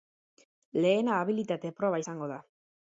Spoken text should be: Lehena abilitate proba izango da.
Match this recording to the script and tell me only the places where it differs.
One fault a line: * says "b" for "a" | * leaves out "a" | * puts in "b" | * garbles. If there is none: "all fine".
all fine